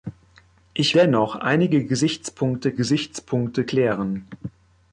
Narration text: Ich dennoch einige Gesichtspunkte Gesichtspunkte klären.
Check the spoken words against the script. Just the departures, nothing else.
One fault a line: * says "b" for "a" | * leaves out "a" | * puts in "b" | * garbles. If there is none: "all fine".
all fine